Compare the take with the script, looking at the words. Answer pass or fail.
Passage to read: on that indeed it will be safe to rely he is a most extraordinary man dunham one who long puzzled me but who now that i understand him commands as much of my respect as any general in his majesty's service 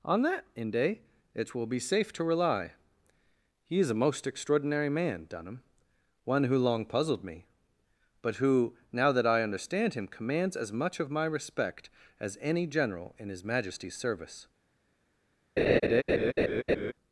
fail